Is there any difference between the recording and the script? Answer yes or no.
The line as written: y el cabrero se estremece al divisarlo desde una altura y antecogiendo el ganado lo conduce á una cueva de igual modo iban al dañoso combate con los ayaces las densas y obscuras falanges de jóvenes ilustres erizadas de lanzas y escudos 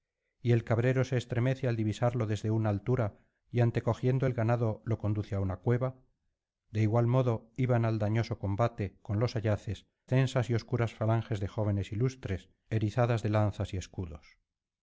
yes